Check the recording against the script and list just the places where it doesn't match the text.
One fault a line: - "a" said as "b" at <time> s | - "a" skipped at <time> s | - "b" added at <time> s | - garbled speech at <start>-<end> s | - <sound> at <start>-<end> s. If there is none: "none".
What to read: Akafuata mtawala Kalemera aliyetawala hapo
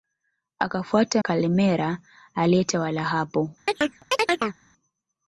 - "mtawala" skipped at 1.2 s
- chirp at 3.7-4.6 s